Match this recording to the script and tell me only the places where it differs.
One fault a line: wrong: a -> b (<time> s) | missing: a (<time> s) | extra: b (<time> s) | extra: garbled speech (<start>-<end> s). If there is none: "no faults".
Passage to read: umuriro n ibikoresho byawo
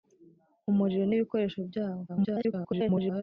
extra: garbled speech (2.1-3.2 s)